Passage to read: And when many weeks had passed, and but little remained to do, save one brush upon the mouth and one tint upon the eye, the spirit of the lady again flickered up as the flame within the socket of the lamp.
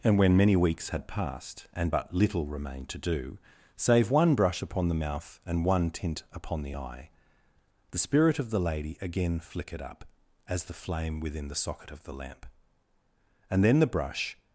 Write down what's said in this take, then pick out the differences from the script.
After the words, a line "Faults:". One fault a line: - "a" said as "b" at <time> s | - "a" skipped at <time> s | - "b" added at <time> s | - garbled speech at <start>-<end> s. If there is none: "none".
And when many weeks had passed, and but little remained to do, save one brush upon the mouth and one tint upon the eye, the spirit of the lady again flickered up as the flame within the socket of the lamp. And then the brush
Faults:
- "And then the brush" added at 13.5 s